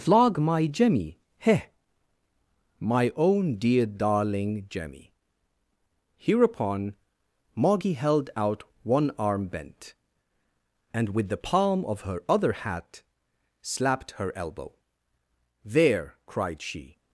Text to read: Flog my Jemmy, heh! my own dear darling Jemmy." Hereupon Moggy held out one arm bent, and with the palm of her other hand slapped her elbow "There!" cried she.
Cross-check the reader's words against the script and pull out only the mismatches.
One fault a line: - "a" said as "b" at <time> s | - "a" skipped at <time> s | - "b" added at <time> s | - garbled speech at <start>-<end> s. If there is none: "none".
- "hand" said as "hat" at 12.5 s